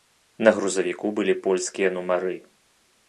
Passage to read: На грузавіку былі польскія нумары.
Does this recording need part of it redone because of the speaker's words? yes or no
no